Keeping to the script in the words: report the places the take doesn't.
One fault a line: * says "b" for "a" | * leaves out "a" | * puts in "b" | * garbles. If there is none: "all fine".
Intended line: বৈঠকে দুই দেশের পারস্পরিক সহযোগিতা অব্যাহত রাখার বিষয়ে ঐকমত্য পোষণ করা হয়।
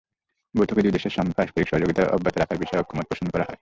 all fine